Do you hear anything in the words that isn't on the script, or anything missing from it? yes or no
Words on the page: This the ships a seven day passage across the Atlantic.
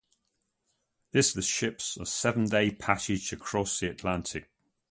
no